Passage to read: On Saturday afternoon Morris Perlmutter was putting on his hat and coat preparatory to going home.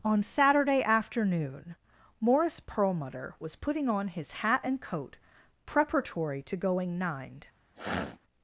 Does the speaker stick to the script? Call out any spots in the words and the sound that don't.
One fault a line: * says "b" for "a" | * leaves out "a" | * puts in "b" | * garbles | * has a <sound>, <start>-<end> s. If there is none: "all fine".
* says "nined" for "home"
* has a sniff, 7.7-8.2 s